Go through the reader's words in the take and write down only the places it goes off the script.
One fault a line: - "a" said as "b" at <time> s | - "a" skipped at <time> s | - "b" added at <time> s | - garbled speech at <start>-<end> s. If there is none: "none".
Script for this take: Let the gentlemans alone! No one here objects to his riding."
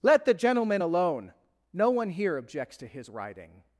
- "gentlemans" said as "gentleman" at 0.3 s